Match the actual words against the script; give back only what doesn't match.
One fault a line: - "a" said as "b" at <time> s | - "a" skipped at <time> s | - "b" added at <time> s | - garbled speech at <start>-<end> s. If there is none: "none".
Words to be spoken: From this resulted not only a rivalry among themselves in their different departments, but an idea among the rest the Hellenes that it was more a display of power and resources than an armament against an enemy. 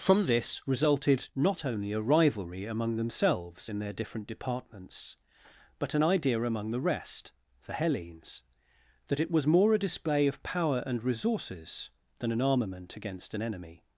none